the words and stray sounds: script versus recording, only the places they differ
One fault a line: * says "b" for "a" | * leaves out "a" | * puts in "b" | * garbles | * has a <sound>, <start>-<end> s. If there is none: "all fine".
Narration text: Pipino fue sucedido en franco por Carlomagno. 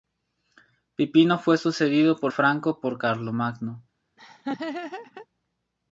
* has a laugh, 4.2-5.3 s